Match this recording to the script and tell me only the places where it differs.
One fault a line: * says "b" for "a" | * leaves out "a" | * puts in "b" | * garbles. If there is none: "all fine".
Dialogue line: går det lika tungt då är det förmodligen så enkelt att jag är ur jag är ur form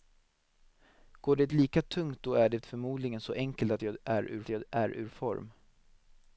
all fine